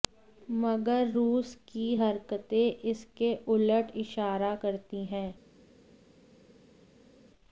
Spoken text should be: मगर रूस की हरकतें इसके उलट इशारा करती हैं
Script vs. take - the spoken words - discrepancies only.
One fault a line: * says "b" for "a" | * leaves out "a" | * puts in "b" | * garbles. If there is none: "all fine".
all fine